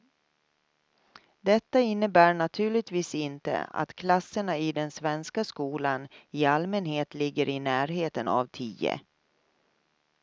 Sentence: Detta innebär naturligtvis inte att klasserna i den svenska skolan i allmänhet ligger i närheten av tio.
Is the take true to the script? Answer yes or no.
yes